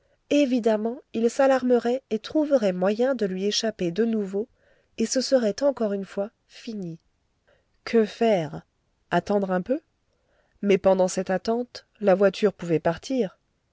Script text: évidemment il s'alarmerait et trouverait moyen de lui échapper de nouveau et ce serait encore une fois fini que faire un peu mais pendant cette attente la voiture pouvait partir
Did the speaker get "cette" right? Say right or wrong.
right